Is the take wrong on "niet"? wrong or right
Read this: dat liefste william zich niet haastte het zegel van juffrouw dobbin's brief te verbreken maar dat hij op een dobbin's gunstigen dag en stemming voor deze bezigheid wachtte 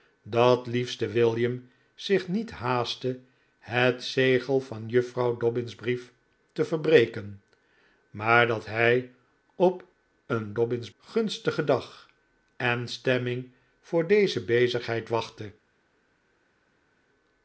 right